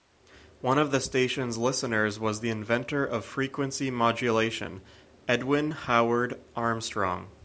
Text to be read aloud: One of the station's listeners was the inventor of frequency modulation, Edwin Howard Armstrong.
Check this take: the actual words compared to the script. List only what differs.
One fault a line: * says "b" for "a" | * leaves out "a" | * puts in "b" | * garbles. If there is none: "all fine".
all fine